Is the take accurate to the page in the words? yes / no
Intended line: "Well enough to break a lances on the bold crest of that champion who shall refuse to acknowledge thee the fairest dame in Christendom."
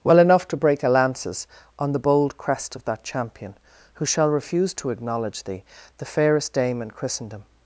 yes